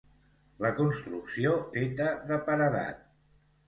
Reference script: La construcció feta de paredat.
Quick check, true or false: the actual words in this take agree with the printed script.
true